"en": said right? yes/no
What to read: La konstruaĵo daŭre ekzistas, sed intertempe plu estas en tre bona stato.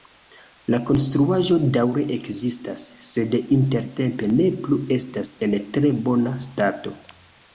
yes